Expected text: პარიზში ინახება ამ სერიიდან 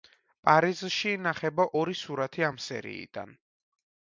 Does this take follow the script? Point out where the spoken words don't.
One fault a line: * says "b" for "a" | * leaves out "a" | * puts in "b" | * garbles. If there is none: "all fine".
* puts in "ორი სურათი"